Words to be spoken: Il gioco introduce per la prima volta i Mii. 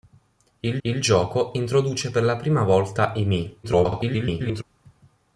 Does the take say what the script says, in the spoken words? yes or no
no